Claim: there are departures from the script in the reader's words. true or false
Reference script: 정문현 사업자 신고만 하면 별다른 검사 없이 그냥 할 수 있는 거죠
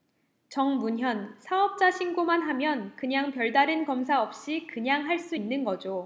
true